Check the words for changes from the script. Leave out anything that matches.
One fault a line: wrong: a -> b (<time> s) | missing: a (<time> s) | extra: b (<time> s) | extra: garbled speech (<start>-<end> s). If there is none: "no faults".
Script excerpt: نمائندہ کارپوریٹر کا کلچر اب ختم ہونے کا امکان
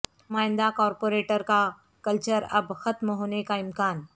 no faults